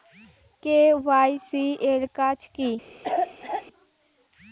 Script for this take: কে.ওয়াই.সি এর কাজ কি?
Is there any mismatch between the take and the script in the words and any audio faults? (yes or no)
yes